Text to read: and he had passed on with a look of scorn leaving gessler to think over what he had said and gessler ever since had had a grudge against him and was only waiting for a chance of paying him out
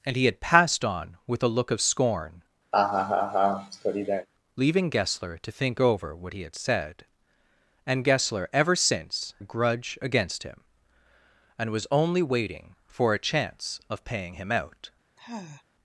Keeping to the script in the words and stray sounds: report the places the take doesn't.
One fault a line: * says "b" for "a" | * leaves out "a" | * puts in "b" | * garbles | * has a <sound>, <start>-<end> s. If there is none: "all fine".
* has a laugh, 2.7-4.3 s
* leaves out "had had"
* has a sigh, 15.2-15.6 s